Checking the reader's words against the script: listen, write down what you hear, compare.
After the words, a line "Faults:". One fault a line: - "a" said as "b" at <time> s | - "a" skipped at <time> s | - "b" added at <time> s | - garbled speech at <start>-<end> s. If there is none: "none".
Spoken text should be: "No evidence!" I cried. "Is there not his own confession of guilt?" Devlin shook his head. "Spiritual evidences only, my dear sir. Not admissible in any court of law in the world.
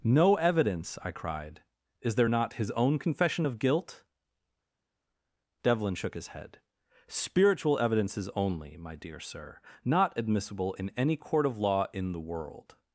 "No evidence!" I cried. "Is there not his own confession of guilt?" Devlin shook his head. "Spiritual evidences only, my dear sir. Not admissible in any court of law in the world.
Faults:
none